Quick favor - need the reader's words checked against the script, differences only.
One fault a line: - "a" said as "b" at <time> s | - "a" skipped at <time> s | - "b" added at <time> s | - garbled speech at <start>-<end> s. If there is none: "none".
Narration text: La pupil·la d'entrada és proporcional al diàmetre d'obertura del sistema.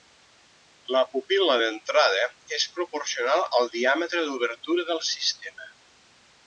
none